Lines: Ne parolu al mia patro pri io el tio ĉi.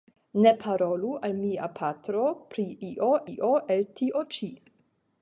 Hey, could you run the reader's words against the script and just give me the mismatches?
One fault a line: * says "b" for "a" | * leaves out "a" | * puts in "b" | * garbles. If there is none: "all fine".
* puts in "io"